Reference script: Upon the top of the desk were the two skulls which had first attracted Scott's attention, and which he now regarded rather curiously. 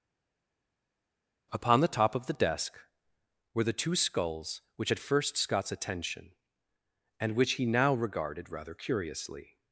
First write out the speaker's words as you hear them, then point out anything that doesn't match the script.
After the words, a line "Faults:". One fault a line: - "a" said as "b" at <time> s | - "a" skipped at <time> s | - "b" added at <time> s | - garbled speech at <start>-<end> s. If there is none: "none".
Upon the top of the desk were the two skulls which had first Scott's attention, and which he now regarded rather curiously.
Faults:
- "attracted" skipped at 5.4 s